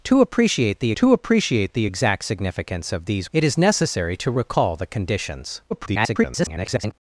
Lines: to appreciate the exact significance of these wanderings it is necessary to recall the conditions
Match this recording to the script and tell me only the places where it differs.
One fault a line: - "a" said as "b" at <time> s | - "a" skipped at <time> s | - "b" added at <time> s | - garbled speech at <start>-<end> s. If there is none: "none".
- "to appreciate the" added at 1.0 s
- "wanderings" skipped at 3.3 s
- garbled speech at 5.7-6.9 s